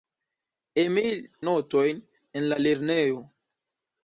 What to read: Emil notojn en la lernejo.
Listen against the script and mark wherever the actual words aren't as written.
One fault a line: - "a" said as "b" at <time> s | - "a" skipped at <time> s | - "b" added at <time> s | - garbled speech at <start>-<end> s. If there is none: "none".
none